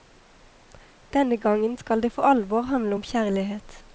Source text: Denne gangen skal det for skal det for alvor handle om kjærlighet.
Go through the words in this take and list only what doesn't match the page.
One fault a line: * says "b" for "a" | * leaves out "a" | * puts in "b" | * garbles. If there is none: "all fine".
* leaves out "skal det for"